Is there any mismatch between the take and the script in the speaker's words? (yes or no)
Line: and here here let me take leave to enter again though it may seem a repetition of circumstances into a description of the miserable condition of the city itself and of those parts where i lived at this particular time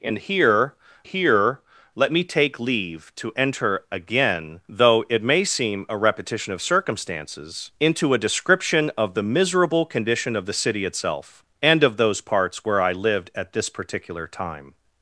no